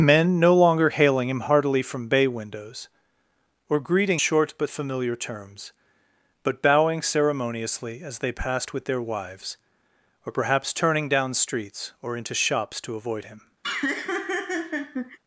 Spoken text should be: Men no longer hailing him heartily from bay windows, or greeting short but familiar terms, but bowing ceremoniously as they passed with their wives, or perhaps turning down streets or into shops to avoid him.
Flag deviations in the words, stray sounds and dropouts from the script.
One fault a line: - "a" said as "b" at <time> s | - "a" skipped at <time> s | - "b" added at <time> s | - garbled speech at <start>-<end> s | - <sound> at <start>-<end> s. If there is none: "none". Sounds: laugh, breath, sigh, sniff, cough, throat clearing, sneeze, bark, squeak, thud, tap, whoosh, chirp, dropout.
- laugh at 13.6-15.2 s